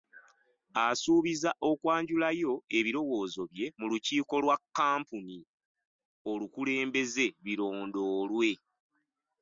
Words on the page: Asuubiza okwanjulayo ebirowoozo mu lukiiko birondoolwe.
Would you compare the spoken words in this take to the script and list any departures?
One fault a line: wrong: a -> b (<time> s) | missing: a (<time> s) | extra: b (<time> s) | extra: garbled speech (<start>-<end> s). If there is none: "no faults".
extra: bye (3.5 s)
extra: lwa kkampuni olukulembeze (4.4 s)